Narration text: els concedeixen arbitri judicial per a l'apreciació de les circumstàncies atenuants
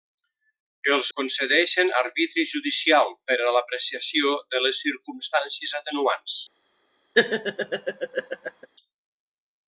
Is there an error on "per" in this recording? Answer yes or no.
no